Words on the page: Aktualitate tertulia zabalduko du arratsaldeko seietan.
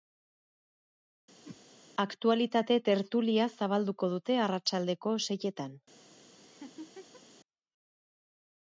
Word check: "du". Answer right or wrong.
wrong